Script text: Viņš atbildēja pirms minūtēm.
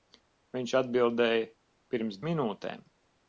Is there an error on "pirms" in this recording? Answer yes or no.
no